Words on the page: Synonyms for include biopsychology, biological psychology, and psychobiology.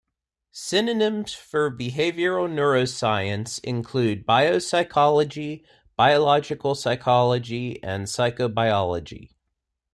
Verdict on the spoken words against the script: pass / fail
fail